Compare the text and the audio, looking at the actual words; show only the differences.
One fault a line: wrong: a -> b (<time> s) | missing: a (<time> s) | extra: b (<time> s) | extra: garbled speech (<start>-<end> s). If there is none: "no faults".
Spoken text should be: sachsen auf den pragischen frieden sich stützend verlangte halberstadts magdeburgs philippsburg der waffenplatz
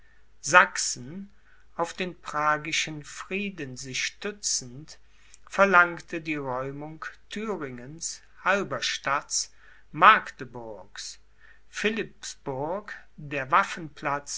extra: die räumung thüringens (6.2 s)